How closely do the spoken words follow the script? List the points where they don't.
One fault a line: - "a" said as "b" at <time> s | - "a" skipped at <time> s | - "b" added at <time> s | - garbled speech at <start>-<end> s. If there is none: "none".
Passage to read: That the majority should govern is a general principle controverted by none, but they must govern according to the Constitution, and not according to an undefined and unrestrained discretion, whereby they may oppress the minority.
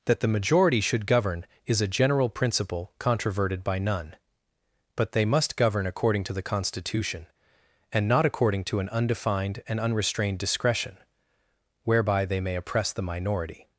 none